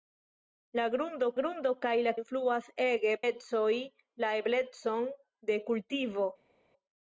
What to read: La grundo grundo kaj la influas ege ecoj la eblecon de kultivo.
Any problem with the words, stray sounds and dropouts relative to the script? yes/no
no